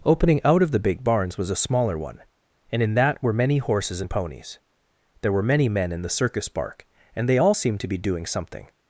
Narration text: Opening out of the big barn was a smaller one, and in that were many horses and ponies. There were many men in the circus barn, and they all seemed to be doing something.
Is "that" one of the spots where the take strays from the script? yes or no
no